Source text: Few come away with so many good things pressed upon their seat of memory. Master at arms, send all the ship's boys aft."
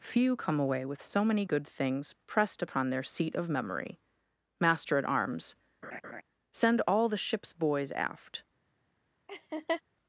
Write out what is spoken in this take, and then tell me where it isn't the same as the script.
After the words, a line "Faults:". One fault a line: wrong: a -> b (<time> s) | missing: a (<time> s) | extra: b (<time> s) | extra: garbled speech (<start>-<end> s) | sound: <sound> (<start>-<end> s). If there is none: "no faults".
Few come away with so many good things pressed upon their seat of memory. Master at arms, send all the ship's boys aft."
Faults:
sound: laugh (5.8-6.2 s)
sound: laugh (9.3-9.8 s)